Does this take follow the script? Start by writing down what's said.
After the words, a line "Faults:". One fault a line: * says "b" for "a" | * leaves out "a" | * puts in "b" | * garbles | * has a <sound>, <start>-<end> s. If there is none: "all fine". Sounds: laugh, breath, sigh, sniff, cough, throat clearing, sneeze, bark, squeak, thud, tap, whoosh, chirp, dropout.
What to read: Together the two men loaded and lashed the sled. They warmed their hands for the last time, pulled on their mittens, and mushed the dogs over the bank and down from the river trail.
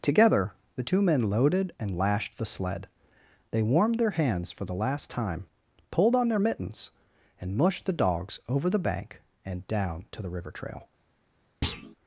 Together the two men loaded and lashed the sled. They warmed their hands for the last time, pulled on their mittens, and mushed the dogs over the bank and down to the river trail.
Faults:
* says "to" for "from"
* has a thud, 11.6-12.0 s